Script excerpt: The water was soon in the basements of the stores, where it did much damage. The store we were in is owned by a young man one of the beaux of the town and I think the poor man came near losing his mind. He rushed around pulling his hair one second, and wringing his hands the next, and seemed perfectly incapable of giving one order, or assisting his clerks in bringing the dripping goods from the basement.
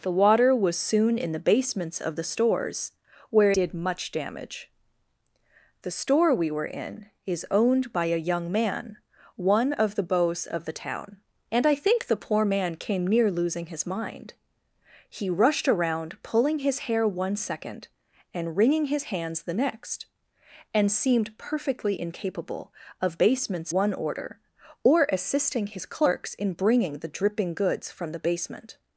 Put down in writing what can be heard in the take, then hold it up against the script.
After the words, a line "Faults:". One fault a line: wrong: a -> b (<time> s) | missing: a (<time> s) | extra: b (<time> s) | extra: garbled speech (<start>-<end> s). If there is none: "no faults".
The water was soon in the basements of the stores, where did much damage. The store we were in is owned by a young man one of the beaux of the town and I think the poor man came near losing his mind. He rushed around pulling his hair one second, and wringing his hands the next, and seemed perfectly incapable of basements one order, or assisting his clerks in bringing the dripping goods from the basement.
Faults:
missing: it (3.5 s)
wrong: giving -> basements (23.2 s)